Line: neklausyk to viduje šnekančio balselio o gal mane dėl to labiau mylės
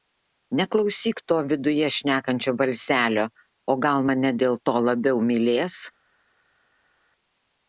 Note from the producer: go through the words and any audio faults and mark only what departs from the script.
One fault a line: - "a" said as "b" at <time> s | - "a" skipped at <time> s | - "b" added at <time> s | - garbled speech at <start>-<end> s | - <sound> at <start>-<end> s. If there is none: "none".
none